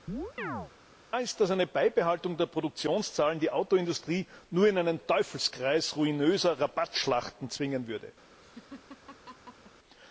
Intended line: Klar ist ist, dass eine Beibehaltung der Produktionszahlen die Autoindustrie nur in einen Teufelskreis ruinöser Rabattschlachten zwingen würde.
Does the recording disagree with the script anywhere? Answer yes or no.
yes